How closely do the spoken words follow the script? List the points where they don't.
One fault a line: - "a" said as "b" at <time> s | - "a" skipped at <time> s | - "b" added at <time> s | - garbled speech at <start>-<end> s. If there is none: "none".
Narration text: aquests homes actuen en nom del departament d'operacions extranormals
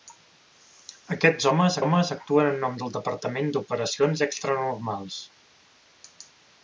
- "homes" added at 1.8 s